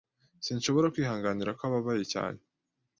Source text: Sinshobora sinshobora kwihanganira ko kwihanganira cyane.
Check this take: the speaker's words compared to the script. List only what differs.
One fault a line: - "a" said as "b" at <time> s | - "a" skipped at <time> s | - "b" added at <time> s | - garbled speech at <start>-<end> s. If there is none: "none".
- "sinshobora" skipped at 0.9 s
- "kwihanganira" said as "ababaye" at 1.7 s